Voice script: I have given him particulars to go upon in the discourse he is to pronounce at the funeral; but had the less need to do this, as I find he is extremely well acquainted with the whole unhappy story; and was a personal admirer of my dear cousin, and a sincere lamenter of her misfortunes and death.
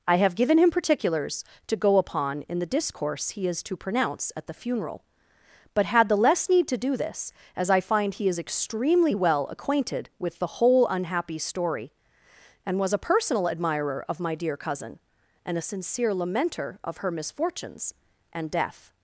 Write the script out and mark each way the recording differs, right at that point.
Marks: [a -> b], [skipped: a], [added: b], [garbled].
I have given him particulars to go upon in the discourse he is to pronounce at the funeral; but had the less need to do this, as I find he is extremely well acquainted with the whole unhappy story; and was a personal admirer of my dear cousin, and a sincere lamenter of her misfortunes and death.